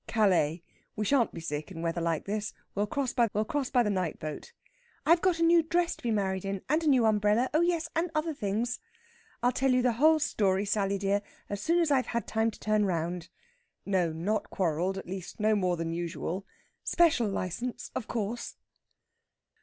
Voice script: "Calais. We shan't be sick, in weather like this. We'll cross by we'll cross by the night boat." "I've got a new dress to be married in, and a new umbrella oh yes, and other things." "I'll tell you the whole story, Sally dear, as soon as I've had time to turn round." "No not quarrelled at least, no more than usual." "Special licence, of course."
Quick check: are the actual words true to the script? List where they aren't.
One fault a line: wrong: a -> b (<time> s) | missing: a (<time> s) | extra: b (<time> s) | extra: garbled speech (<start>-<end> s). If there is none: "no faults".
no faults